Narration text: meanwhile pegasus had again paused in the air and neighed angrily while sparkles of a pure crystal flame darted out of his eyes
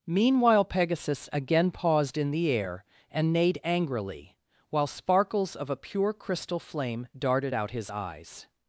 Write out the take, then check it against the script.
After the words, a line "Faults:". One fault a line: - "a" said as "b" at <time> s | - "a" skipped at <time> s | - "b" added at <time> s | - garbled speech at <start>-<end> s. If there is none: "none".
meanwhile pegasus again paused in the air and neighed angrily while sparkles of a pure crystal flame darted out his eyes
Faults:
- "had" skipped at 1.3 s
- "of" skipped at 7.7 s